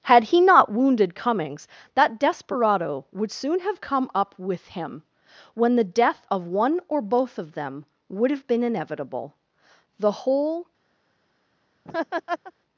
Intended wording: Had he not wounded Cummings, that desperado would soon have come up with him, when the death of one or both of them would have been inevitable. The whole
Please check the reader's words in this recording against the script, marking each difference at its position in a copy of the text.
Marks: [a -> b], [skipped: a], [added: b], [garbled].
Had he not wounded Cummings, that desperado would soon have come up with him, when the death of one or both of them would have been inevitable. The whole